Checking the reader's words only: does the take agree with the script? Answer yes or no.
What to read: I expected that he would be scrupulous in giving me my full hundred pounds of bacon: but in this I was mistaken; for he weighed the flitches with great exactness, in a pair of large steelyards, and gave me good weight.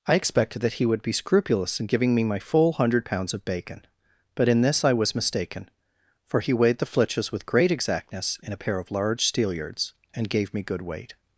yes